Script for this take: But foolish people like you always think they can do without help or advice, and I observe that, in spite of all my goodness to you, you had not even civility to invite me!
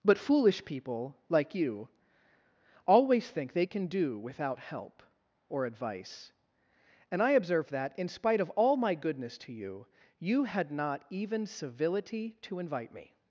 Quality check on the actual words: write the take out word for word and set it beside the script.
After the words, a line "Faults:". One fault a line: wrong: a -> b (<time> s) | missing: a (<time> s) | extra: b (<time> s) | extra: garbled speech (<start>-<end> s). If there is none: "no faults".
But foolish people like you always think they can do without help or advice, and I observe that, in spite of all my goodness to you, you had not even civility to invite me!
Faults:
no faults